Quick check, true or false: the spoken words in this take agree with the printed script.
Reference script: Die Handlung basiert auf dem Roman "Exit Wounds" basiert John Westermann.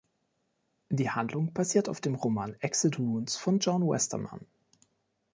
false